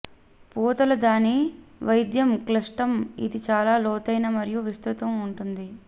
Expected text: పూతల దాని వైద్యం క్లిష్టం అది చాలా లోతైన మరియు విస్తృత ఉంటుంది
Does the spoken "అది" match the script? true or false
false